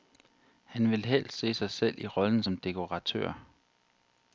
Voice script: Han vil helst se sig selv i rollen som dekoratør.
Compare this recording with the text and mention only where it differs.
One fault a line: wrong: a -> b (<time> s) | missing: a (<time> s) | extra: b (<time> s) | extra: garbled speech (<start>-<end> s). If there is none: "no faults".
no faults